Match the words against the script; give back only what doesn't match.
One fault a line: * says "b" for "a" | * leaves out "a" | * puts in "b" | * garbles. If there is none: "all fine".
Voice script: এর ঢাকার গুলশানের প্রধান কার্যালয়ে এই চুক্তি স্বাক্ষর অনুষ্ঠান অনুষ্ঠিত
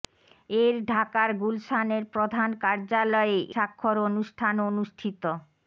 * leaves out "এই চুক্তি"